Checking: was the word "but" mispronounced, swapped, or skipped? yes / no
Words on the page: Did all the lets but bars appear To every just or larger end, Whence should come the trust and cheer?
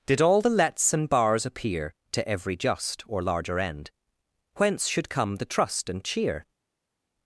yes